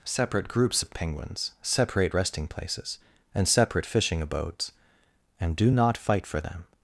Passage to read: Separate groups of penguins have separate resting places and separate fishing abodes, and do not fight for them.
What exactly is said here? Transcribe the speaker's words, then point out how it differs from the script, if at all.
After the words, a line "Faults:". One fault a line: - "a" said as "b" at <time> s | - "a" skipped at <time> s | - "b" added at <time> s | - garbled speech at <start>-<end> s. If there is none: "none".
Separate groups of penguins separate resting places and separate fishing abodes, and do not fight for them.
Faults:
- "have" skipped at 1.5 s